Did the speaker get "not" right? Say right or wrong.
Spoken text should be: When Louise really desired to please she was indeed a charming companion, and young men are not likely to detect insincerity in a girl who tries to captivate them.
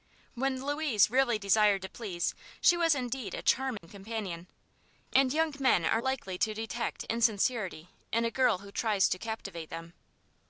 wrong